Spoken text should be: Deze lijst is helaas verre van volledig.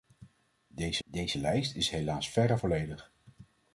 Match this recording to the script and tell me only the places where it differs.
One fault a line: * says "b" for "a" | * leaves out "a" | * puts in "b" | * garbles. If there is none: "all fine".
* puts in "deze"
* leaves out "van"